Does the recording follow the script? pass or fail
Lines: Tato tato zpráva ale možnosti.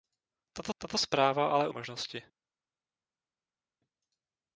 pass